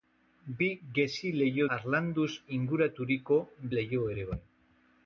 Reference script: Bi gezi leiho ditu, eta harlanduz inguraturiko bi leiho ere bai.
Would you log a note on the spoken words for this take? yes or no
yes